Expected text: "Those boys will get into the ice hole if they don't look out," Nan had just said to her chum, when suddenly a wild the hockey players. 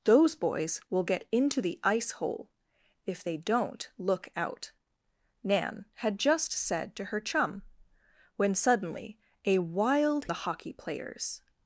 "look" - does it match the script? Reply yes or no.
yes